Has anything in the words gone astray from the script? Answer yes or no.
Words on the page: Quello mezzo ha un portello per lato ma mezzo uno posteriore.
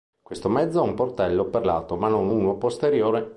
yes